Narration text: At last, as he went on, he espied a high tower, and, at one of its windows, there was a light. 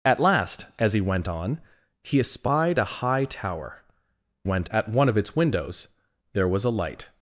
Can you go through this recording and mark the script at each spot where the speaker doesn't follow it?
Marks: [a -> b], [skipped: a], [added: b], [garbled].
At last, as he went on, he espied a high tower, [and, -> went] at one of its windows, there was a light.